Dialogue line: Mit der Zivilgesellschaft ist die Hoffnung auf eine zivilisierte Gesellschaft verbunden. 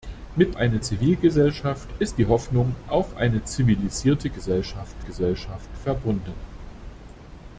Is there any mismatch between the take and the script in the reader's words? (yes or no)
yes